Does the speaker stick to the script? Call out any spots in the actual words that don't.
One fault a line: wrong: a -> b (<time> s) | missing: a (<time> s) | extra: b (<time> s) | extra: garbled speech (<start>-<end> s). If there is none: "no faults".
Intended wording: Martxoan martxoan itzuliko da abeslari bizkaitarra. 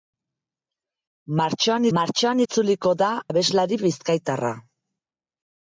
no faults